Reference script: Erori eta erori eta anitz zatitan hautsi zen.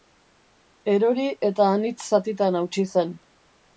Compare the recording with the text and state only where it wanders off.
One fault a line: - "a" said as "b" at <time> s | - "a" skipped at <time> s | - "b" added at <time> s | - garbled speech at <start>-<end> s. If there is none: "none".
- "erori eta" skipped at 1.7 s